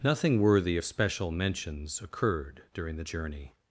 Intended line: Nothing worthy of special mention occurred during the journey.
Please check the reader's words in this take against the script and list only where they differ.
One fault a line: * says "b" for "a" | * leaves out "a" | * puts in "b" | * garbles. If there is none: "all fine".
* says "mentions" for "mention"